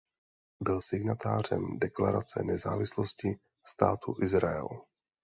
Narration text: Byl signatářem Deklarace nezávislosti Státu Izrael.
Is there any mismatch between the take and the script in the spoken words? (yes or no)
no